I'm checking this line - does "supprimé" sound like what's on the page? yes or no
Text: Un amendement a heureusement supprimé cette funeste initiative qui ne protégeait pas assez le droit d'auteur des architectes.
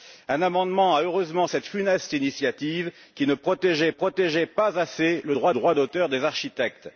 no